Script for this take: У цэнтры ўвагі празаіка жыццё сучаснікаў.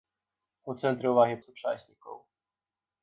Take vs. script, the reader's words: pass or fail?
fail